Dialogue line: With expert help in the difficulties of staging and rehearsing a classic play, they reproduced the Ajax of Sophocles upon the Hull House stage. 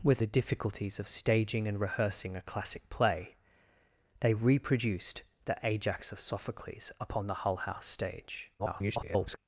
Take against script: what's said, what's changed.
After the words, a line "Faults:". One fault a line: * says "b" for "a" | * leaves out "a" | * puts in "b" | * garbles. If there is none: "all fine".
With the difficulties of staging and rehearsing a classic play, they reproduced the Ajax of Sophocles upon the Hull House stage. [garbled]
Faults:
* leaves out "expert help in"
* garbles